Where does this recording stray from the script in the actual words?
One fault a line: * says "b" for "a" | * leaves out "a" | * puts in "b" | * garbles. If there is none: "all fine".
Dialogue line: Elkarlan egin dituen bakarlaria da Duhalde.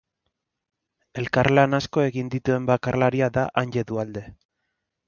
* puts in "asko"
* puts in "Anje"